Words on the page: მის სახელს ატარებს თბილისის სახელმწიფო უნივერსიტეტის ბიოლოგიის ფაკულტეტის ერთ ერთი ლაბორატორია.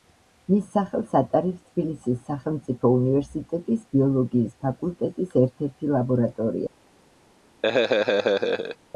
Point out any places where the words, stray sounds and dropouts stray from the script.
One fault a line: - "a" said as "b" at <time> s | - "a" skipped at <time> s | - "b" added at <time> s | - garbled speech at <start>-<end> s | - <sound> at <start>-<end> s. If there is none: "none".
- laugh at 7.6-8.8 s